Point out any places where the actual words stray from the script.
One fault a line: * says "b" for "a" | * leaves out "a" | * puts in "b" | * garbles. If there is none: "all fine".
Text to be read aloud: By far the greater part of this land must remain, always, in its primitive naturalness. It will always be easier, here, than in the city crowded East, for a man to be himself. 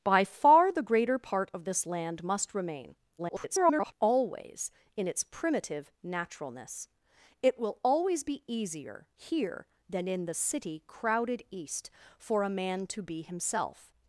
* garbles